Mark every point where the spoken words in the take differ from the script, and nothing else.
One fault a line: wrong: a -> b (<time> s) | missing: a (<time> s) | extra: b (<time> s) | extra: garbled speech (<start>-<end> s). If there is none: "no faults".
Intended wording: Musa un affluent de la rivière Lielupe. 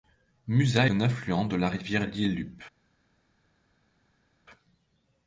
no faults